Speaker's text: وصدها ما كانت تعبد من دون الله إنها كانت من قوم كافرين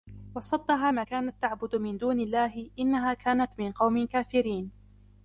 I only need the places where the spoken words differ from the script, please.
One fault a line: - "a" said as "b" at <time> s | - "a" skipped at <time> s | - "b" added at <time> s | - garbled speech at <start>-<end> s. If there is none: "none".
none